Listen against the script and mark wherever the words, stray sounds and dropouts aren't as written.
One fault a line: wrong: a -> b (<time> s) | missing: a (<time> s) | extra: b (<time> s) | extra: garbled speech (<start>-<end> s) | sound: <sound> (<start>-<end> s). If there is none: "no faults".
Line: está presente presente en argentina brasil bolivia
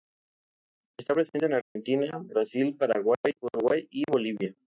missing: presente (1.4 s)
sound: dropout (1.6-1.8 s)
extra: paraguay uruguay y (2.8 s)